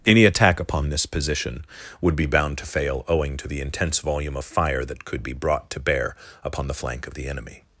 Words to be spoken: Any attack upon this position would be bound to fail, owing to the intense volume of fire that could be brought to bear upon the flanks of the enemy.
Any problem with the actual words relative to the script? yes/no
yes